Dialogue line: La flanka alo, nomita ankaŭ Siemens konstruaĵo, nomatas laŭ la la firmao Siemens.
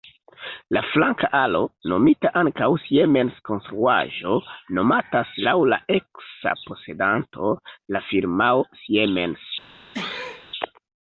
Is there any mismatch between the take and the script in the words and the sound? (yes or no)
yes